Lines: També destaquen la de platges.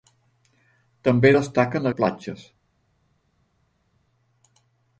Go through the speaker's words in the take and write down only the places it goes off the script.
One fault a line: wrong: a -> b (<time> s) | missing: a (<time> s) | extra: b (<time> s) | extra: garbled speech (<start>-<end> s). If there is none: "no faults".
no faults